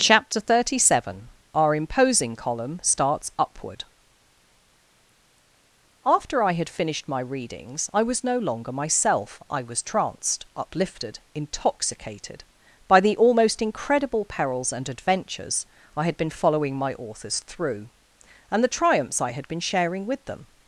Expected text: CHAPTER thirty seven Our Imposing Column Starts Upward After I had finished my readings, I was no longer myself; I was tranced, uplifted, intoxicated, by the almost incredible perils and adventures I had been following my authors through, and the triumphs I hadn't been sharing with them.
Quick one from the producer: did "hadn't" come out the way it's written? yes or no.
no